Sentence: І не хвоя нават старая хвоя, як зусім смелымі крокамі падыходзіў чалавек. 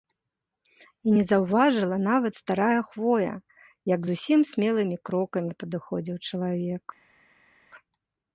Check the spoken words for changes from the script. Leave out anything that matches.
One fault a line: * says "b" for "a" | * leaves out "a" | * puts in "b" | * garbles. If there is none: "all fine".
* says "заўважыла" for "хвоя"